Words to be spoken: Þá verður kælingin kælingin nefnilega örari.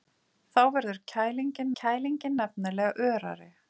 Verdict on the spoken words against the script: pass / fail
pass